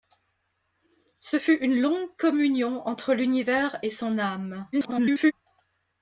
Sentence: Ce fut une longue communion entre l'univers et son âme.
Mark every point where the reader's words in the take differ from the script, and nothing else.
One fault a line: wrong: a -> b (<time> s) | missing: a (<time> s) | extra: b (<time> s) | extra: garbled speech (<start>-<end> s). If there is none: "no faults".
extra: garbled speech (4.7-5.3 s)